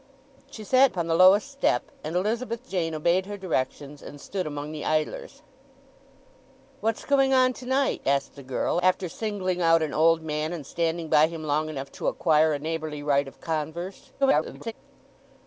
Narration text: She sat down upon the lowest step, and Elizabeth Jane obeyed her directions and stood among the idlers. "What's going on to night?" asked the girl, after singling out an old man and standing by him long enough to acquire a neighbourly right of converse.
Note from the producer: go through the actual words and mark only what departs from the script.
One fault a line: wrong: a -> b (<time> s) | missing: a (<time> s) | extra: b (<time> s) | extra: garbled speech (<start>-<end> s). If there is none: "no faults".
missing: down (0.9 s)
extra: garbled speech (14.2-14.7 s)